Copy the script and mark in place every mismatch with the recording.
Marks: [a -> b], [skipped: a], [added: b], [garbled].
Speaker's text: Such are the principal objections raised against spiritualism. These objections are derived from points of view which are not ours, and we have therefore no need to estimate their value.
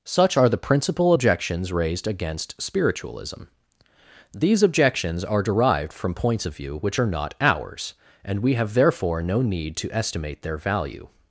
Such are the principal objections raised against spiritualism. These objections are derived from points of view which are not ours, and we have therefore no need to estimate their value.